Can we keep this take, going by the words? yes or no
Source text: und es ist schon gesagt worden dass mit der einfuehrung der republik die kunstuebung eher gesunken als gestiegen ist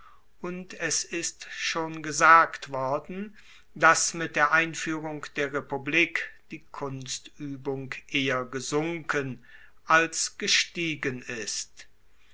yes